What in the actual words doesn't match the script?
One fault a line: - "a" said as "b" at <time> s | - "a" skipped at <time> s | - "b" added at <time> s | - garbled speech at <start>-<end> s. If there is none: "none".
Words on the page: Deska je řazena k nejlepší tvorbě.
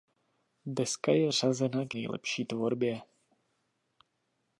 none